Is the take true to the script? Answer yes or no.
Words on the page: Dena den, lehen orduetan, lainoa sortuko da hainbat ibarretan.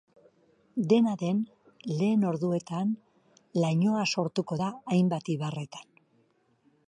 yes